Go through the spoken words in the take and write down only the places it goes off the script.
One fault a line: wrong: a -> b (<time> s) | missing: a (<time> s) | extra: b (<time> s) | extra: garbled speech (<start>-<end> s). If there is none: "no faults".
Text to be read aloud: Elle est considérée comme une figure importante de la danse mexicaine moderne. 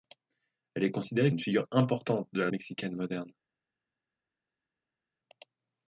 missing: comme (1.3 s)
missing: danse (2.5 s)